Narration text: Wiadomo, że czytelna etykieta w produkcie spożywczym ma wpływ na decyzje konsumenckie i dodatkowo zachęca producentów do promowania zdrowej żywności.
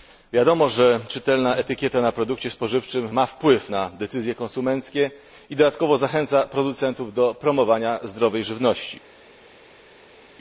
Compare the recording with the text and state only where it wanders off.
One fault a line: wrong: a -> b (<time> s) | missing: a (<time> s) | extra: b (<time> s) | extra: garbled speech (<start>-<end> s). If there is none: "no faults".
wrong: w -> na (2.0 s)